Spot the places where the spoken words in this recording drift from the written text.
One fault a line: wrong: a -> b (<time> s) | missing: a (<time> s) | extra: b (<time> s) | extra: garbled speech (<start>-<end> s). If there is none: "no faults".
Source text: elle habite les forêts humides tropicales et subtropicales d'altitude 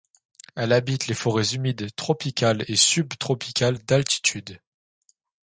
no faults